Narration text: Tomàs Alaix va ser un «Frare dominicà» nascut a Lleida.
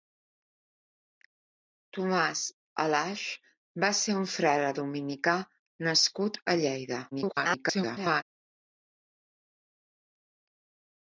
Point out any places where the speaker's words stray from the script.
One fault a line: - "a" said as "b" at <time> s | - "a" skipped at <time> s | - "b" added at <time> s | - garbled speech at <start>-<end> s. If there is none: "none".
- garbled speech at 7.1-8.2 s